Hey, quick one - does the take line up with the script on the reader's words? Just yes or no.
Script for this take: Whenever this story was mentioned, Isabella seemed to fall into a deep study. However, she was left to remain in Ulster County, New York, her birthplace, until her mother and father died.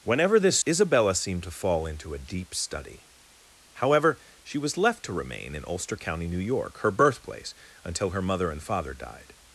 no